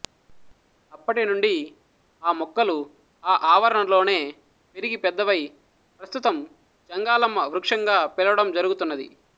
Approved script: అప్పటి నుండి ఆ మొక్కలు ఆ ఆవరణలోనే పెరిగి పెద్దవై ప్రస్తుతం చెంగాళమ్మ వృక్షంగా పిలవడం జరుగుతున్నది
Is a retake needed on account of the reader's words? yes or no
no